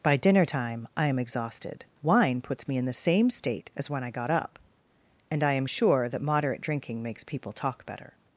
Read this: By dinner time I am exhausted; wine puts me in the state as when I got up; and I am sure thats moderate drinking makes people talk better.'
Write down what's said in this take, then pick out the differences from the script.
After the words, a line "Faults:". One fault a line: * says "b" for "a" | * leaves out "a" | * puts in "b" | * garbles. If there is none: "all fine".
By dinner time I am exhausted; wine puts me in the same state as when I got up; and I am sure that moderate drinking makes people talk better.'
Faults:
* puts in "same"
* says "that" for "thats"